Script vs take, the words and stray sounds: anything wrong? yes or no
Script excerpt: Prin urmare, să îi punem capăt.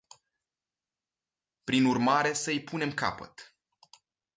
no